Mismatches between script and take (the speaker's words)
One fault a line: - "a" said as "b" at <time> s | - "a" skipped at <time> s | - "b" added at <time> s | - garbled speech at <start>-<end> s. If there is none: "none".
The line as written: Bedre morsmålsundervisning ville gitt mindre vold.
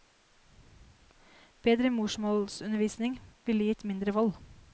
none